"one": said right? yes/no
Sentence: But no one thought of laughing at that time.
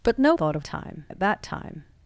no